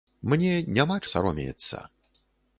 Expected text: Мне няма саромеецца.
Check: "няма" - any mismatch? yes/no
no